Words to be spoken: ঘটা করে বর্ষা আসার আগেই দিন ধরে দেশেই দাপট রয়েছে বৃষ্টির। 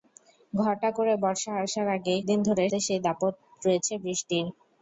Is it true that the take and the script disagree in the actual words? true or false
false